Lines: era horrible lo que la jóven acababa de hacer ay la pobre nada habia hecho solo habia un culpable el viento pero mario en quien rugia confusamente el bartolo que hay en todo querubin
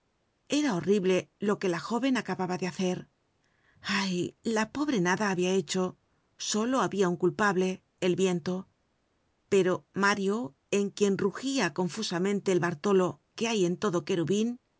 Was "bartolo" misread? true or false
false